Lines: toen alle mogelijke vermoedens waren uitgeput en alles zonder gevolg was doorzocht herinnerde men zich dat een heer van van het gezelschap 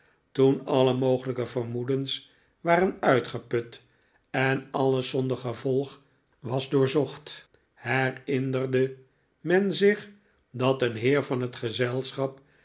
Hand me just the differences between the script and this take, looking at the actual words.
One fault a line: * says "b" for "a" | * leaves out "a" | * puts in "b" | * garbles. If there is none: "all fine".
* leaves out "van"